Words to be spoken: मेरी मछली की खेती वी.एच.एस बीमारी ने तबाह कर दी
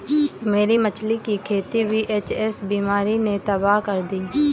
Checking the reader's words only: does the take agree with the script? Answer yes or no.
yes